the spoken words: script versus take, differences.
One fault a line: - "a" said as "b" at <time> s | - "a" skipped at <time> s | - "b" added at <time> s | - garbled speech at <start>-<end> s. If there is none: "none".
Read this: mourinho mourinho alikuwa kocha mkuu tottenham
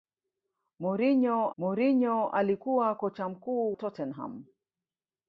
none